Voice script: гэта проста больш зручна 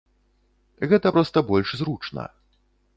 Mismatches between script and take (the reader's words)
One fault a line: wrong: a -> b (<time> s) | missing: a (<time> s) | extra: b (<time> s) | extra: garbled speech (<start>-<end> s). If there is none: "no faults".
no faults